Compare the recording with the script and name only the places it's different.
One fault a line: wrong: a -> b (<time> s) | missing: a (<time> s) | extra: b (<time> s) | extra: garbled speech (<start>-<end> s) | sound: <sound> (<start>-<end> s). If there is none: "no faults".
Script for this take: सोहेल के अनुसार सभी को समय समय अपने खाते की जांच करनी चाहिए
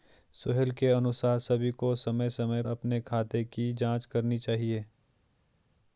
no faults